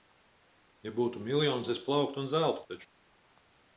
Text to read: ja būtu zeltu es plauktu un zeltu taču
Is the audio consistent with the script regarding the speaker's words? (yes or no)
no